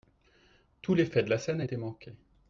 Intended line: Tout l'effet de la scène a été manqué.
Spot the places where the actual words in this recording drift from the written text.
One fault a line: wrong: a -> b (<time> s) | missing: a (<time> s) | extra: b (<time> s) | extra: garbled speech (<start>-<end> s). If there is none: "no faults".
no faults